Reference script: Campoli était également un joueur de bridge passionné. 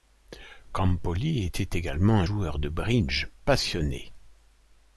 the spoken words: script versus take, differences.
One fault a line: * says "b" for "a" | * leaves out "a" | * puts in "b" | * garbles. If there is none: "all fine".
all fine